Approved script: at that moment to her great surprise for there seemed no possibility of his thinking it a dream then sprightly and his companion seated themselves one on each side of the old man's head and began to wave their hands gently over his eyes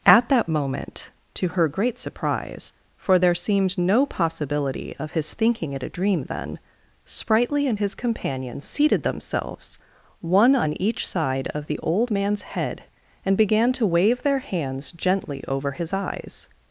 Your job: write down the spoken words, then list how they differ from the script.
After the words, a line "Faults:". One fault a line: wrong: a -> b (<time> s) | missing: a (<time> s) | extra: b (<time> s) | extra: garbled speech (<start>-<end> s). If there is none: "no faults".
at that moment to her great surprise for there seemed no possibility of his thinking it a dream then sprightly and his companion seated themselves one on each side of the old man's head and began to wave their hands gently over his eyes
Faults:
no faults